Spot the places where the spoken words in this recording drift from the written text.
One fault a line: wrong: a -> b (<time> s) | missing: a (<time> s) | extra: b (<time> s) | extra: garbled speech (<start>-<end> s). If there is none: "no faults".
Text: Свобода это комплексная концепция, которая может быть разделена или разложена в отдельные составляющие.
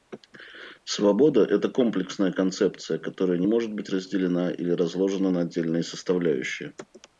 extra: не (3.4 s)
wrong: в -> на (5.3 s)